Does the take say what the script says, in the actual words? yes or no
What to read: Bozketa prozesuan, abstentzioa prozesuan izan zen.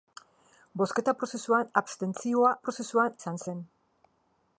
yes